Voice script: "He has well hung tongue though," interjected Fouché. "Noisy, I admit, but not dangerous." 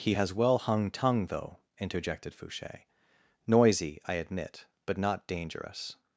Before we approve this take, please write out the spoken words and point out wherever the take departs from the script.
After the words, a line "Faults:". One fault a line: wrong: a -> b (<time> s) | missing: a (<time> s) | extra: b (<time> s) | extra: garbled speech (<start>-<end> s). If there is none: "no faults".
"He has well hung tongue though," interjected Fouché. "Noisy, I admit, but not dangerous."
Faults:
no faults